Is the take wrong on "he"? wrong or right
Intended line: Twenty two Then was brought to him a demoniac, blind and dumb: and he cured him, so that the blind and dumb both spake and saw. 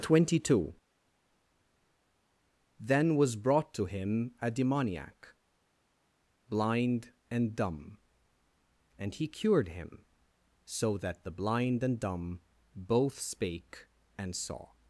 right